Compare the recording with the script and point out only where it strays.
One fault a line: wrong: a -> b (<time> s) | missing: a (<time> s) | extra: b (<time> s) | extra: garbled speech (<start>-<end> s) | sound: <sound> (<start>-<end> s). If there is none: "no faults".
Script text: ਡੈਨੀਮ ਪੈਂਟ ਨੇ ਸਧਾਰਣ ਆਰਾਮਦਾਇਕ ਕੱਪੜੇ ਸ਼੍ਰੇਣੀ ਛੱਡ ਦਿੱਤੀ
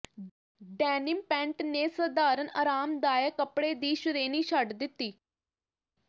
extra: ਦੀ (3.7 s)